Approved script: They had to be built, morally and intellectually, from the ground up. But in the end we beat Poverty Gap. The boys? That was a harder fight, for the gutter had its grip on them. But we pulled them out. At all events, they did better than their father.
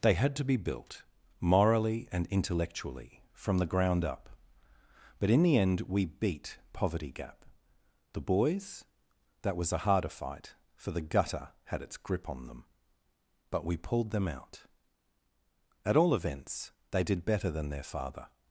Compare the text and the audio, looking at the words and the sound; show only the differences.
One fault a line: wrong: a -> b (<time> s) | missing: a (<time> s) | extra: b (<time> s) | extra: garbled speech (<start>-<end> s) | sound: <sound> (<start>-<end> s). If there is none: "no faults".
no faults